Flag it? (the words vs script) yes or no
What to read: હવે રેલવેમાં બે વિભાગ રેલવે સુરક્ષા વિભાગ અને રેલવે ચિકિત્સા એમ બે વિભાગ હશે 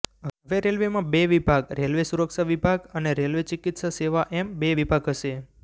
yes